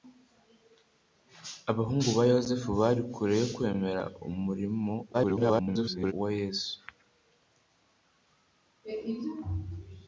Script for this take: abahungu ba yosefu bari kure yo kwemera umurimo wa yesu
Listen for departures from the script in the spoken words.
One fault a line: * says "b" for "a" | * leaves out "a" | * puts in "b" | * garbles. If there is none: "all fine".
* garbles